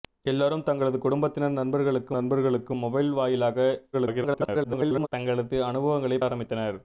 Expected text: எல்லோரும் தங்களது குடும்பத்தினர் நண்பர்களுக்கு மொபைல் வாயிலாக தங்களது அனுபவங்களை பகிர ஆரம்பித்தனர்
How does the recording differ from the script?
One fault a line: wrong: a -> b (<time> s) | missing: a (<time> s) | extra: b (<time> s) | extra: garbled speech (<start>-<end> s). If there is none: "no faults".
extra: நண்பர்களுக்கு (2.1 s)
extra: garbled speech (3.9-5.1 s)
missing: பகிர (6.2 s)